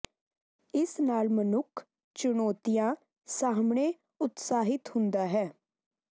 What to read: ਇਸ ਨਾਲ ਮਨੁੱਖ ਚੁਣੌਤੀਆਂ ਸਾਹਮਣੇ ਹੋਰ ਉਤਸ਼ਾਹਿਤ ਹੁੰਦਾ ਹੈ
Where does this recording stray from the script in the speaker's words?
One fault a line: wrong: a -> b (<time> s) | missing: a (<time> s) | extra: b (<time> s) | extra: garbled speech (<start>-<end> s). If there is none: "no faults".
missing: ਹੋਰ (3.9 s)